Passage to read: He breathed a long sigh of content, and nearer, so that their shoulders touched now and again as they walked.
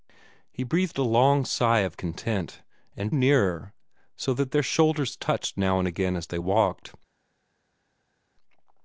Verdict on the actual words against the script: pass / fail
pass